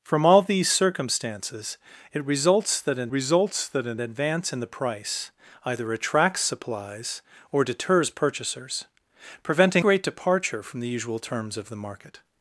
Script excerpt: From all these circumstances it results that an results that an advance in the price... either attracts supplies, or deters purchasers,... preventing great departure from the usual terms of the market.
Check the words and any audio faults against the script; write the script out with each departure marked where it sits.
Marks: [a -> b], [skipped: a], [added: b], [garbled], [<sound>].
From all these circumstances it results that an results that an advance in the price... either attracts supplies, or deters purchasers,... preventing great departure from the usual terms of the market.